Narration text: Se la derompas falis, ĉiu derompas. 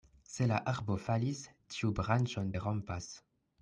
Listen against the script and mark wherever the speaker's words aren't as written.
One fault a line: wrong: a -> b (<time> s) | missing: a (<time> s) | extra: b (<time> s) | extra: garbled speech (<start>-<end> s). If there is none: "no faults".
wrong: derompas -> arbo (0.7 s)
extra: branĉon (2.0 s)